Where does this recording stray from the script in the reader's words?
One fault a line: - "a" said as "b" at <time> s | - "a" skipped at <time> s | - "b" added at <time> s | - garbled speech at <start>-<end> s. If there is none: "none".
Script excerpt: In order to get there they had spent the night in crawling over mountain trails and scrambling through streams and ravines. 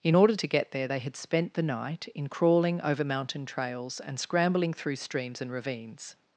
none